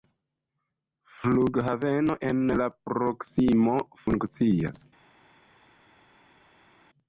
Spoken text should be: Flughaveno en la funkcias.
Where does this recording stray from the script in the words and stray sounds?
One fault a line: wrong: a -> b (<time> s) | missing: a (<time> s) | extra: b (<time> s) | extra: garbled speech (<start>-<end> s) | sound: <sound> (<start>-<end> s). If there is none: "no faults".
extra: proksimo (2.9 s)